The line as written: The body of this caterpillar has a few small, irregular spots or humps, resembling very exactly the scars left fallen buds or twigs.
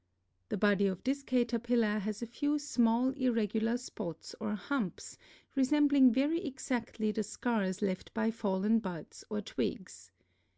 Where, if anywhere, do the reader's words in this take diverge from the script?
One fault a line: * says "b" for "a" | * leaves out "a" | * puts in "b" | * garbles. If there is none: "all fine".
* puts in "by"